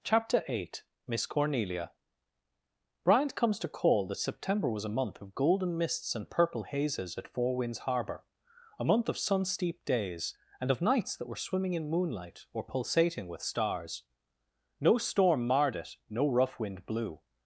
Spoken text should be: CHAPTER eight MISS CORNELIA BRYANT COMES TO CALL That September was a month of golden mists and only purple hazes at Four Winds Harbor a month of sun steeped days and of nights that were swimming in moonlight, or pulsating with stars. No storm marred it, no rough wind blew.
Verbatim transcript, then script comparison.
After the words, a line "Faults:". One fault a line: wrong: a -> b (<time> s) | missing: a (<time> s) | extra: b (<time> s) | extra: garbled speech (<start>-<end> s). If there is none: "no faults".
CHAPTER eight MISS CORNELIA BRYANT COMES TO CALL That September was a month of golden mists and purple hazes at Four Winds Harbor a month of sun steeped days and of nights that were swimming in moonlight, or pulsating with stars. No storm marred it, no rough wind blew.
Faults:
missing: only (6.3 s)